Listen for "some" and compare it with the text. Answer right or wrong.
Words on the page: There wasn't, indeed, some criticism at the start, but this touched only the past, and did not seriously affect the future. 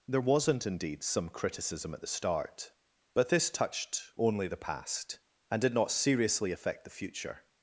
right